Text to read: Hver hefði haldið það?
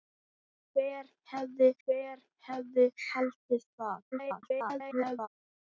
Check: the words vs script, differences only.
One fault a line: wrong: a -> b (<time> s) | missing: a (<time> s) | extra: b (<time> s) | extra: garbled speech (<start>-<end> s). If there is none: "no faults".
extra: hver hefði (1.9 s)
extra: garbled speech (4.1-5.3 s)